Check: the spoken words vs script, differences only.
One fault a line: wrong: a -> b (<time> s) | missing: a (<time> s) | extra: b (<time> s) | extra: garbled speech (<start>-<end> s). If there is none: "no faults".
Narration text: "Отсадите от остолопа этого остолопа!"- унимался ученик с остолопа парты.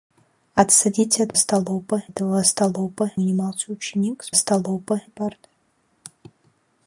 no faults